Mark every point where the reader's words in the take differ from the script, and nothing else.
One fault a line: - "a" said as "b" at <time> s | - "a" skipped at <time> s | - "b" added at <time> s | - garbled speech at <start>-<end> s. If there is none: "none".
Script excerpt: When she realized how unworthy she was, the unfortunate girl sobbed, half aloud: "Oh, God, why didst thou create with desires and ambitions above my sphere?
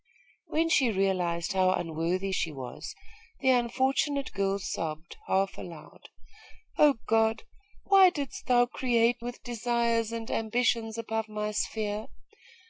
none